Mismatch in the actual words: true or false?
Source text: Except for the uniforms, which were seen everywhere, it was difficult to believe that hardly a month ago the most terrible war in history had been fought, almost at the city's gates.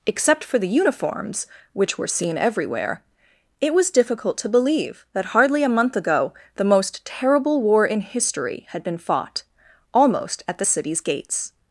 false